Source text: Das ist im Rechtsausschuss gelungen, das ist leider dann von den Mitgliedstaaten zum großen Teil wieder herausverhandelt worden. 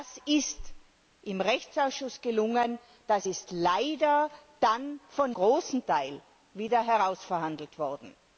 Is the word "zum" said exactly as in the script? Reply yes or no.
no